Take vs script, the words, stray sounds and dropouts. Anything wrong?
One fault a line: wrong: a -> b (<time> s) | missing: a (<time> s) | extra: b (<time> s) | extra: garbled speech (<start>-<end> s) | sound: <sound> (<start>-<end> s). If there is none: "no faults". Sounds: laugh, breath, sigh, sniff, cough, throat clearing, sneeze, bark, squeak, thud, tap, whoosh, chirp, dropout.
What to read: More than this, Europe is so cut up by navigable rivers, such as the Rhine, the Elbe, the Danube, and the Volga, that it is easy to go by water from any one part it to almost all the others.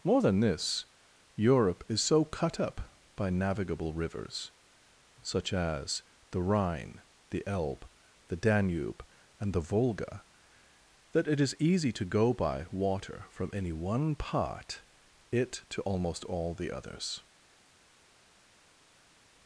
no faults